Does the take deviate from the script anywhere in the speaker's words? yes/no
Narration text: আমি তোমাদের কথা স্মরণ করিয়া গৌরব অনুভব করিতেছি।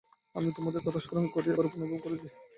no